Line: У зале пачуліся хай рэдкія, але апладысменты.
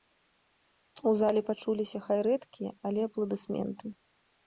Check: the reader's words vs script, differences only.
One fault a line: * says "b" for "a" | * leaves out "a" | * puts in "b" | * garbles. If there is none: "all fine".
all fine